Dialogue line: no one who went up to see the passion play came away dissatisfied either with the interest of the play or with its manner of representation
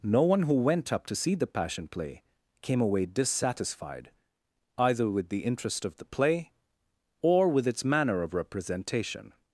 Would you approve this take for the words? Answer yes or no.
yes